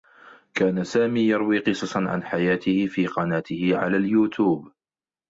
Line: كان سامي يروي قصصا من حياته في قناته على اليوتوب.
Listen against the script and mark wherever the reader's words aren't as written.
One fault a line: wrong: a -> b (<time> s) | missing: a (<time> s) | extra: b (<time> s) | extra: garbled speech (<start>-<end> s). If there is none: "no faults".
wrong: من -> عن (2.0 s)